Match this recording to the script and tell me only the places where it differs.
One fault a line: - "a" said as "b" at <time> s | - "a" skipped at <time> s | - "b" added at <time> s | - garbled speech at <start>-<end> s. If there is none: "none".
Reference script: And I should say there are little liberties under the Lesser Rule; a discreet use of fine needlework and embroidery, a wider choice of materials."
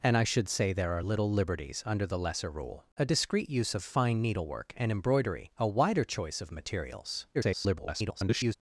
- garbled speech at 7.3-8.6 s